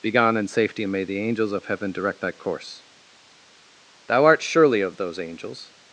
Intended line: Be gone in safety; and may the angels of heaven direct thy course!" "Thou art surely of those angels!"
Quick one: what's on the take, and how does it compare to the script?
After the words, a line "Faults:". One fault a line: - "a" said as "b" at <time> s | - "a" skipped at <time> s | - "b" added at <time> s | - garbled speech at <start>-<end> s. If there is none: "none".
Be gone in safety; and may the angels of heaven direct thy course!" "Thou art surely of those angels!"
Faults:
none